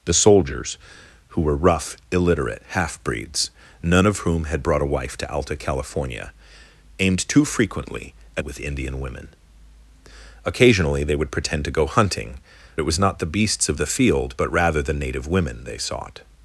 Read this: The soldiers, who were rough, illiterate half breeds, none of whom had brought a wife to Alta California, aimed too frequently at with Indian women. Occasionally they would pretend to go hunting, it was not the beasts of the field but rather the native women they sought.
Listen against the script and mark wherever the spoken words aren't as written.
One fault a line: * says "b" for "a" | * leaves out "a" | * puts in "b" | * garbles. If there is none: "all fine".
all fine